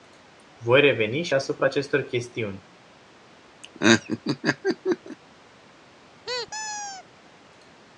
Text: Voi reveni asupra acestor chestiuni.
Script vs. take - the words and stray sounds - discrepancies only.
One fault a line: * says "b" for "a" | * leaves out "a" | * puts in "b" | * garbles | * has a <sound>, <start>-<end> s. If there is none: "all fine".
* puts in "și"
* has a laugh, 3.6-5.2 s
* has a squeak, 6.3-7.0 s